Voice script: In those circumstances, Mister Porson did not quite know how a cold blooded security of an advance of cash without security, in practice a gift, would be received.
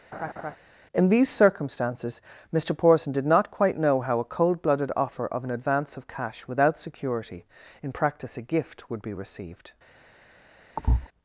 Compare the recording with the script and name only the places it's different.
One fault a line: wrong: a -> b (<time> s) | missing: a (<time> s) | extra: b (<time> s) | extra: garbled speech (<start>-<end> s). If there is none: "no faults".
wrong: those -> these (1.1 s)
wrong: security -> offer (5.0 s)